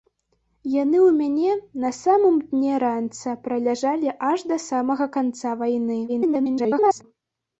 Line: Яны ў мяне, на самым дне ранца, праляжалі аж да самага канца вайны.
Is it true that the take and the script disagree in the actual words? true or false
true